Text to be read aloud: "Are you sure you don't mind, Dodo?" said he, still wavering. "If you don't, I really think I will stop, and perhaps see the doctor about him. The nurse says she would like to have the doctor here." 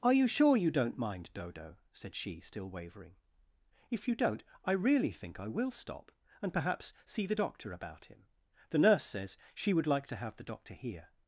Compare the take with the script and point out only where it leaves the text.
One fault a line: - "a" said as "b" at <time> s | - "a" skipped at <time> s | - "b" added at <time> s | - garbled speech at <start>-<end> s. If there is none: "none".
- "he" said as "she" at 2.1 s